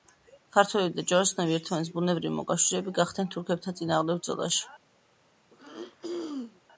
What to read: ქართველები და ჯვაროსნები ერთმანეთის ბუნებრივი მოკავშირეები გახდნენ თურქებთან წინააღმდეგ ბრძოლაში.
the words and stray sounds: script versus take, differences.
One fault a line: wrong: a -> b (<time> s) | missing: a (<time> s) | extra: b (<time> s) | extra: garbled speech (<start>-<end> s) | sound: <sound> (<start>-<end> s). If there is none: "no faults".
sound: throat clearing (5.5-6.6 s)